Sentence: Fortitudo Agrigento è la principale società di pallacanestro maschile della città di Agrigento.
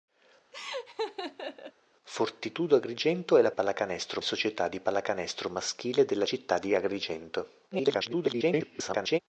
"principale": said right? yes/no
no